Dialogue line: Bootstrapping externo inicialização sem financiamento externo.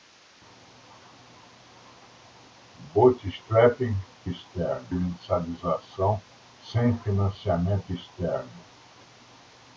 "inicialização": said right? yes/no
yes